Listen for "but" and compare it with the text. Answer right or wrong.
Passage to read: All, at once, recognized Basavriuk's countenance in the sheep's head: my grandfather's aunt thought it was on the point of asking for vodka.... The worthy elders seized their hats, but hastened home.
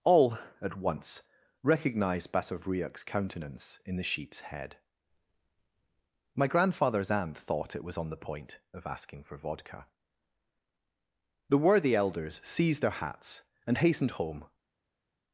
wrong